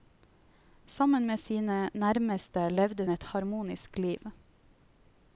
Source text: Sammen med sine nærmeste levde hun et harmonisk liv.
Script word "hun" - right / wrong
wrong